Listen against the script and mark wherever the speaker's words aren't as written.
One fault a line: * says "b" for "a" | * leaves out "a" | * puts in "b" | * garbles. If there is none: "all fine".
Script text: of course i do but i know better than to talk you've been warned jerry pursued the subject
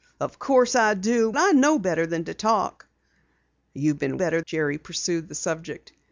* leaves out "but"
* says "better" for "warned"